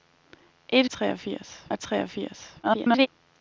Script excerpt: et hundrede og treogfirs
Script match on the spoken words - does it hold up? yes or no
no